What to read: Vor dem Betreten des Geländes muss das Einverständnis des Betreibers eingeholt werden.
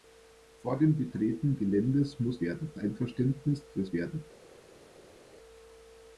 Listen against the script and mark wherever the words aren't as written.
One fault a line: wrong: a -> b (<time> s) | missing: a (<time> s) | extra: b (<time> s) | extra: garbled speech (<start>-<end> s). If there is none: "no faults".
missing: des (1.6 s)
wrong: das -> werden (2.4 s)
missing: Betreibers eingeholt (3.9 s)